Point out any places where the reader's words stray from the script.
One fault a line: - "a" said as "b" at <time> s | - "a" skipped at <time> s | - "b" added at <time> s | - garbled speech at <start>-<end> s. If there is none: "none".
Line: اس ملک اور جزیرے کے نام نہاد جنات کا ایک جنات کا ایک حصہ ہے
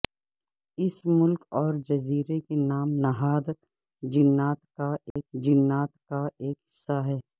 none